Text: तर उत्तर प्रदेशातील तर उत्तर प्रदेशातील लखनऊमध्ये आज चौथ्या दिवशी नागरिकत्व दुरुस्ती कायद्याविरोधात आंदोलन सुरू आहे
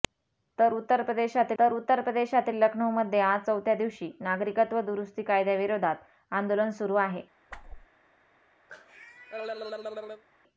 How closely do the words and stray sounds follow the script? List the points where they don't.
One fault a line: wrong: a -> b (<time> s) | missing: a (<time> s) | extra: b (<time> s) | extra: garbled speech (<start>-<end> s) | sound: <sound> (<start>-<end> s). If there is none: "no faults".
sound: whoosh (7.5-7.9 s)
sound: cough (8.7-10.2 s)